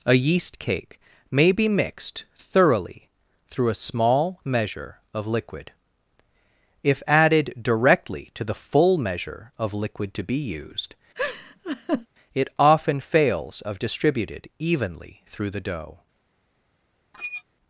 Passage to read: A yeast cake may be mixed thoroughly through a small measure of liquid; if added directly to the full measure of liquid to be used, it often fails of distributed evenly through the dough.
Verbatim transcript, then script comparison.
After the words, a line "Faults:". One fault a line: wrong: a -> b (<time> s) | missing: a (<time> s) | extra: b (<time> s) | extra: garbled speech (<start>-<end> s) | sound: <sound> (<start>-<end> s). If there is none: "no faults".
A yeast cake may be mixed thoroughly through a small measure of liquid; if added directly to the full measure of liquid to be used, it often fails of distributed evenly through the dough.
Faults:
sound: laugh (11.1-12.1 s)
sound: squeak (17.1-17.4 s)